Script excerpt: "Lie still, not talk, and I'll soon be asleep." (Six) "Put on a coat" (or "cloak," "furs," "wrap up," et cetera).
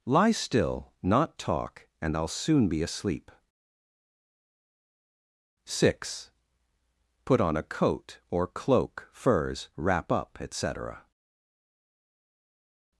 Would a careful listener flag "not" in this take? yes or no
no